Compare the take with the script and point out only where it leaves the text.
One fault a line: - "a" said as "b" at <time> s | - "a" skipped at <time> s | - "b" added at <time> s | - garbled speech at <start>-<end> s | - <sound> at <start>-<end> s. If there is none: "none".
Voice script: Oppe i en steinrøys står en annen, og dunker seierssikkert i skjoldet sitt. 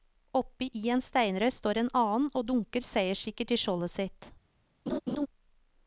- laugh at 4.9-5.3 s